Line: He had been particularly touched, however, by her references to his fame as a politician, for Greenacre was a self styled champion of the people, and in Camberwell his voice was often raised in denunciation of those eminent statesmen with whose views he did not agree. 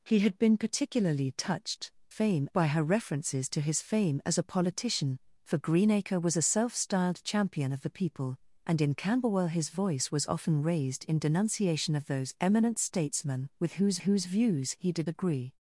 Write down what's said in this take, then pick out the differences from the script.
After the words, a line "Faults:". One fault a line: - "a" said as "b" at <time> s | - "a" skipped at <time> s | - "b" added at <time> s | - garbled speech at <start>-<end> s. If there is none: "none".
He had been particularly touched, fame, by her references to his fame as a politician, for Greenacre was a self styled champion of the people, and in Camberwell his voice was often raised in denunciation of those eminent statesmen with whose whose views he did agree.
Faults:
- "however" said as "fame" at 2.1 s
- "whose" added at 14.0 s
- "not" skipped at 15.1 s